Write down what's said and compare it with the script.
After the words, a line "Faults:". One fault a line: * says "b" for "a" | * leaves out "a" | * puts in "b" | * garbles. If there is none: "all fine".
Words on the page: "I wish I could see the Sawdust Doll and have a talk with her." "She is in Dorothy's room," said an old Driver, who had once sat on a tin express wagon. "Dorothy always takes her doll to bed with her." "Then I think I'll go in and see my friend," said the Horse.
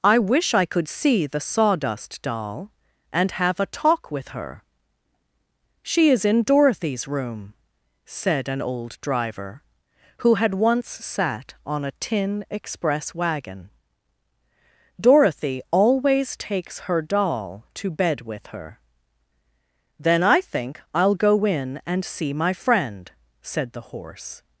"I wish I could see the Sawdust Doll and have a talk with her." "She is in Dorothy's room," said an old Driver, who had once sat on a tin express wagon. "Dorothy always takes her doll to bed with her." "Then I think I'll go in and see my friend," said the Horse.
Faults:
all fine